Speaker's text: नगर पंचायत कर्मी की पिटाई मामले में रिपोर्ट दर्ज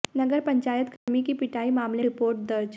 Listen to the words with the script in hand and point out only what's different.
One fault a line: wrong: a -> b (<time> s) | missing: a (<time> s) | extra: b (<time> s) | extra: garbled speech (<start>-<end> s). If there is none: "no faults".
missing: में (2.0 s)